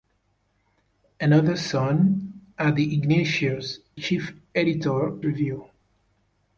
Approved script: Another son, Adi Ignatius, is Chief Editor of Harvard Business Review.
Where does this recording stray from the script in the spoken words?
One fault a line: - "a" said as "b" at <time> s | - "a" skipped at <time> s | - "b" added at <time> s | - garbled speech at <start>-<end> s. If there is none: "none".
- "is" skipped at 3.8 s
- "of Harvard Business" skipped at 5.3 s